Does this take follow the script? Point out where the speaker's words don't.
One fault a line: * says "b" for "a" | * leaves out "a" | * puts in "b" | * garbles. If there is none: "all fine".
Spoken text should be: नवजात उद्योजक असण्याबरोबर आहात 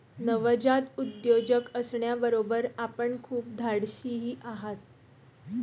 * puts in "आपण खूप धाडशीही"